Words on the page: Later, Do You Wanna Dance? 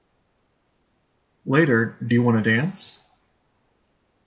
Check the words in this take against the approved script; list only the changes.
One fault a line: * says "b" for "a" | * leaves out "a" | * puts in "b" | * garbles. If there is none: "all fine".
all fine